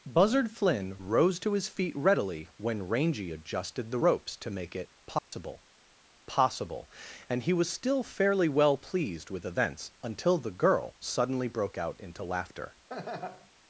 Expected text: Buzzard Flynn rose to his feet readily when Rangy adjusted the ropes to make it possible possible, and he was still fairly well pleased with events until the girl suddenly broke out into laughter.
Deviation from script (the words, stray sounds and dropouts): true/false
true